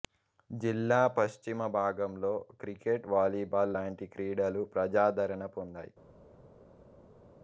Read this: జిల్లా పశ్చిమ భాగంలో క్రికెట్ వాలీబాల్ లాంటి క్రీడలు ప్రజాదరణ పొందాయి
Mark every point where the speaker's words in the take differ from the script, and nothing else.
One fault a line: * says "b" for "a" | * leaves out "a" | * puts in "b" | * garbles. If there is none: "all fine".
all fine